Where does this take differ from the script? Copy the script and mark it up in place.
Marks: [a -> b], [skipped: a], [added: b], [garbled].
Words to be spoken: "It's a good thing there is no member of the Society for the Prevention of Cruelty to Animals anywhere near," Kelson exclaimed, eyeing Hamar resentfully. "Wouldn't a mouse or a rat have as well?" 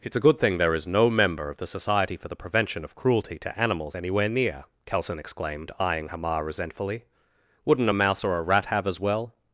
"It's a good thing there is no member of the Society for the Prevention of Cruelty to Animals anywhere near," Kelson exclaimed, eyeing Hamar resentfully. "Wouldn't a mouse or a rat have as well?"